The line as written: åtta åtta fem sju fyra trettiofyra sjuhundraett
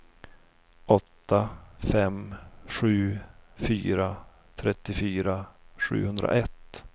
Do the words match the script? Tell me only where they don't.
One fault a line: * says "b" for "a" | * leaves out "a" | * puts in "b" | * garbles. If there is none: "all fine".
* leaves out "åtta"